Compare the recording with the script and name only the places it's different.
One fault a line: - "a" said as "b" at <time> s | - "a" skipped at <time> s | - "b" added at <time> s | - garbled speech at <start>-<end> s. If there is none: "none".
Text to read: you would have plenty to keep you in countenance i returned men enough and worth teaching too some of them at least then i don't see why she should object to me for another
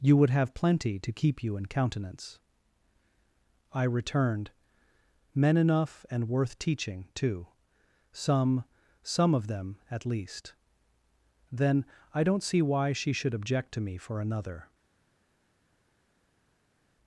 - "some" added at 9.0 s